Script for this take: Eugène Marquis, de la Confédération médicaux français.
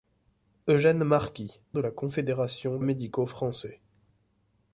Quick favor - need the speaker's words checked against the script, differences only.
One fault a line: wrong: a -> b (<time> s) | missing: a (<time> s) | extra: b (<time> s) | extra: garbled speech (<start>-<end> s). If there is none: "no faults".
no faults